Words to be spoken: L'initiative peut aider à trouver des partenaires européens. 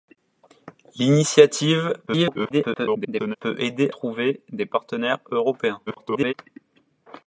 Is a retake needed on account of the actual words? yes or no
yes